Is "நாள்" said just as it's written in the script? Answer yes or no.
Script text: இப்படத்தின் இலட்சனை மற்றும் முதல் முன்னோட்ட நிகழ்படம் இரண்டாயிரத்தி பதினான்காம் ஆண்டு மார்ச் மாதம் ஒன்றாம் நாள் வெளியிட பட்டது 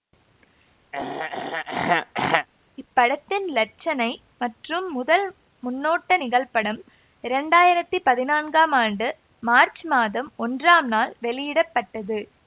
yes